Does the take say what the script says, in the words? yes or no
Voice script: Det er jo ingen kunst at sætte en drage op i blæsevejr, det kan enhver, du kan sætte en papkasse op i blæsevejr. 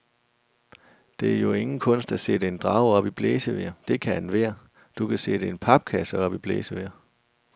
yes